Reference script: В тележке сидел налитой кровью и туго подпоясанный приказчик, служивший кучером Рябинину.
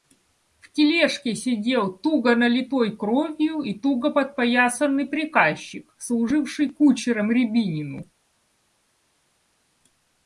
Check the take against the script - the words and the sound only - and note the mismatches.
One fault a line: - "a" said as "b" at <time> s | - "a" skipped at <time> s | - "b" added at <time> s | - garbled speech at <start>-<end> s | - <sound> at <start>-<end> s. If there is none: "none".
- "туго" added at 1.9 s